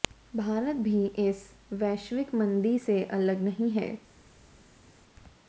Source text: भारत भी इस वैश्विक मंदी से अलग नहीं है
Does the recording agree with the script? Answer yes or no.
yes